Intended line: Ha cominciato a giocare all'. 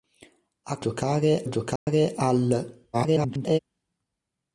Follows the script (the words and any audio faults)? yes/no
no